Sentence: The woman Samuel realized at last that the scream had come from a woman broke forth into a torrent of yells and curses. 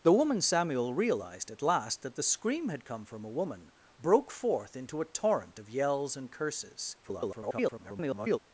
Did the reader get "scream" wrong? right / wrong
right